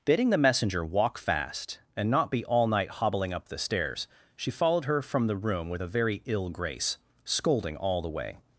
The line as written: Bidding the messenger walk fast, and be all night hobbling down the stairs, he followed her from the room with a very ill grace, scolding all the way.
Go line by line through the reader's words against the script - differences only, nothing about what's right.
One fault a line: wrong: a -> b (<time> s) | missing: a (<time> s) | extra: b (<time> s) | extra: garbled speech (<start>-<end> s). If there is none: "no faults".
extra: not (2.1 s)
wrong: down -> up (3.3 s)
wrong: he -> she (4.3 s)